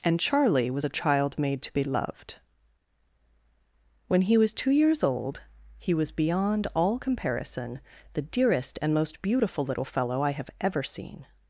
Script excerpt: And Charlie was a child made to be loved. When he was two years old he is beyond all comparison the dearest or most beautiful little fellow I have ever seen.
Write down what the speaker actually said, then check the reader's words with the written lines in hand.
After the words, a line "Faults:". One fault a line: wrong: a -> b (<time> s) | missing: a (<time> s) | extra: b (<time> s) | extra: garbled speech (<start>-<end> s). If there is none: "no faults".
And Charlie was a child made to be loved. When he was two years old he was beyond all comparison the dearest and most beautiful little fellow I have ever seen.
Faults:
wrong: is -> was (5.9 s)
wrong: or -> and (8.8 s)